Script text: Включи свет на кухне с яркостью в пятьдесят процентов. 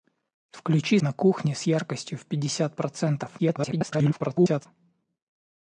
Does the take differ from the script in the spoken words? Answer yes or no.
yes